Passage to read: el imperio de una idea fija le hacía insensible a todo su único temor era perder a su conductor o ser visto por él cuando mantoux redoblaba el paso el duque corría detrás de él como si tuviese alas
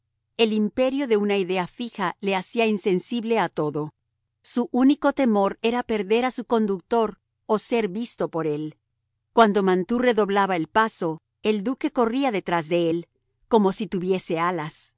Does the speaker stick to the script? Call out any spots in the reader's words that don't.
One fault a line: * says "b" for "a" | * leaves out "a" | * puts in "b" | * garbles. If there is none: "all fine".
all fine